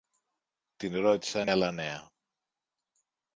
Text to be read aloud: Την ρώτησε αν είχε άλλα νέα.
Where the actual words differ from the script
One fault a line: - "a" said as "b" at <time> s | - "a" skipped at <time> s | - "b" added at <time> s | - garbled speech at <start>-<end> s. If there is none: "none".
- "είχε" skipped at 1.5 s